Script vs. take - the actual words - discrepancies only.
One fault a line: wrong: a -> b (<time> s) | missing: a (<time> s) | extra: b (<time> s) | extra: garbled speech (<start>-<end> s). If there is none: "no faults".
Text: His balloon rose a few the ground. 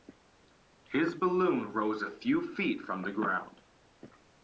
extra: feet from (2.5 s)